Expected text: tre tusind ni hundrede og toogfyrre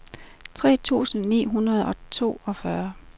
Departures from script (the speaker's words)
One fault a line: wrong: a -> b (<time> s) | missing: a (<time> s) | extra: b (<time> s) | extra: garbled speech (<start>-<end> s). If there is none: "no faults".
no faults